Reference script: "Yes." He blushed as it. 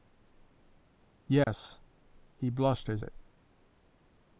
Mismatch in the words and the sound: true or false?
true